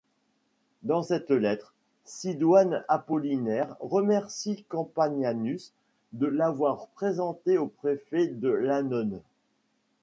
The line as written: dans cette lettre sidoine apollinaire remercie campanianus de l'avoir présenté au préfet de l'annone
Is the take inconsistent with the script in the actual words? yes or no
no